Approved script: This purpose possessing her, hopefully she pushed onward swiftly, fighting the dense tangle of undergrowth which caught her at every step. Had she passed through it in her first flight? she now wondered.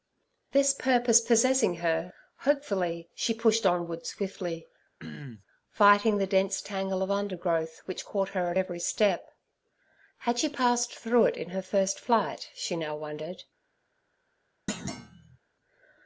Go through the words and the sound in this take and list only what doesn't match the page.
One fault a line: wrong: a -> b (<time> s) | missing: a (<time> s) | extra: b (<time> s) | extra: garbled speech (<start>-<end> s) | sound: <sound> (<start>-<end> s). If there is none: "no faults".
sound: throat clearing (5.0-5.4 s)
sound: thud (14.7-15.4 s)